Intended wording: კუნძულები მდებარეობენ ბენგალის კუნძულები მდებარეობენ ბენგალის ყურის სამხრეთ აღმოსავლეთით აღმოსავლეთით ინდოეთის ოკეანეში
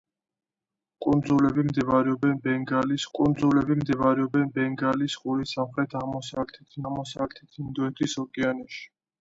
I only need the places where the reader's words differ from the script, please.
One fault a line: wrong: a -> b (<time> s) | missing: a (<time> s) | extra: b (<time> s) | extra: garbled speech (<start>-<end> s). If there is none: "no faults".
no faults